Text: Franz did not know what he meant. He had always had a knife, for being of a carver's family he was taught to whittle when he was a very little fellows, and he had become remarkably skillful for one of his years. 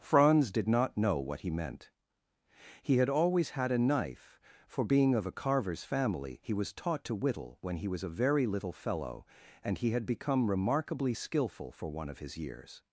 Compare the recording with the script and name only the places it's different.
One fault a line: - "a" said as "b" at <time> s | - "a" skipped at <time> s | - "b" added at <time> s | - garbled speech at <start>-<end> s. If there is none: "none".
- "fellows" said as "fellow" at 8.7 s